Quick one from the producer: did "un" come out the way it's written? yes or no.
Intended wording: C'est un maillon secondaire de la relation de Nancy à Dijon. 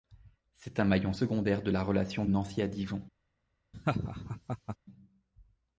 yes